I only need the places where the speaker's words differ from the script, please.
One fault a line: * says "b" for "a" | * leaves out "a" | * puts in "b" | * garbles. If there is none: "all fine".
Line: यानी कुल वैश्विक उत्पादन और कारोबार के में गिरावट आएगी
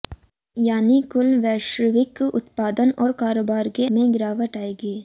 all fine